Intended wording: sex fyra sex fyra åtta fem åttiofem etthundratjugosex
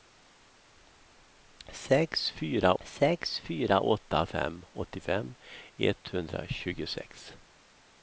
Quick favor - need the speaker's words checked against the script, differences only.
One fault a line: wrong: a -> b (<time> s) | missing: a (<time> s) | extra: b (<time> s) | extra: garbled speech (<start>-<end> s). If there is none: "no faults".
no faults